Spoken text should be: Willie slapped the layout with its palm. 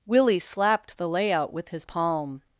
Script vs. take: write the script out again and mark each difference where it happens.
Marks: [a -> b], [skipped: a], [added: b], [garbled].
Willie slapped the layout with [its -> his] palm.